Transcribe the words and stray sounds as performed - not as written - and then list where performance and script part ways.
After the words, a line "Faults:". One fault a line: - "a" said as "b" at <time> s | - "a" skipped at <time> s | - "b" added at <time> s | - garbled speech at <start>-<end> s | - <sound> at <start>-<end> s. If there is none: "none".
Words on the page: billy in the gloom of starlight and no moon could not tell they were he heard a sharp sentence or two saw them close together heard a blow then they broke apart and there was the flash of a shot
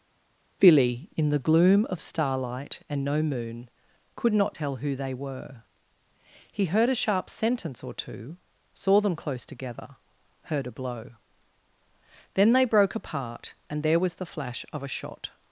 billy in the gloom of starlight and no moon could not tell who they were he heard a sharp sentence or two saw them close together heard a blow then they broke apart and there was the flash of a shot
Faults:
- "who" added at 4.8 s